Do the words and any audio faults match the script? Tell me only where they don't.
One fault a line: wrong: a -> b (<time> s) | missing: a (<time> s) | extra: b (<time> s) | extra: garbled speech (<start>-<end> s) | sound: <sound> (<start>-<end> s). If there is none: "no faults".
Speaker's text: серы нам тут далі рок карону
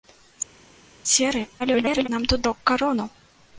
extra: garbled speech (1.6-2.1 s)
missing: далі (2.4 s)